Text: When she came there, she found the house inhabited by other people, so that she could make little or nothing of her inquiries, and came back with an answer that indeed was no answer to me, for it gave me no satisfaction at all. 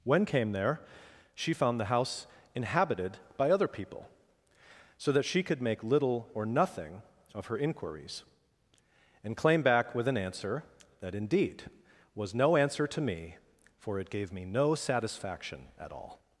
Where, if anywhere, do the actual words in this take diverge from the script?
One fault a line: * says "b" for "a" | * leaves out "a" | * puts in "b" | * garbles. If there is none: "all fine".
* leaves out "she"
* says "claim" for "came"